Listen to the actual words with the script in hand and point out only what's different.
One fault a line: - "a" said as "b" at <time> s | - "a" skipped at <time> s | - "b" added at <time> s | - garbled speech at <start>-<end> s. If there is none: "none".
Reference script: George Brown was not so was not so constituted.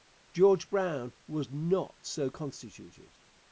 - "was not so" skipped at 2.3 s